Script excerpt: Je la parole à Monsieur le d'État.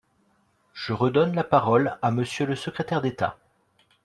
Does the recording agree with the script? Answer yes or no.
no